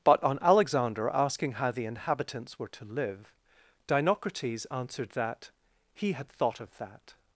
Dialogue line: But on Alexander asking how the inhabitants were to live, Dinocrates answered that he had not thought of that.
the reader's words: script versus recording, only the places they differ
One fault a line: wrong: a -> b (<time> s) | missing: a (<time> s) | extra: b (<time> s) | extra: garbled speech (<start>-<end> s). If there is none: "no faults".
missing: not (6.3 s)